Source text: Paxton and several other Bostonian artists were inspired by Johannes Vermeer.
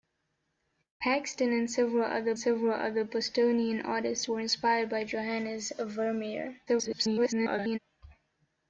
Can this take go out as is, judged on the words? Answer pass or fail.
fail